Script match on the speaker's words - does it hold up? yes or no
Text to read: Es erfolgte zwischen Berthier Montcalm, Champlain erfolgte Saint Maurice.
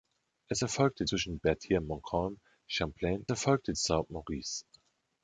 yes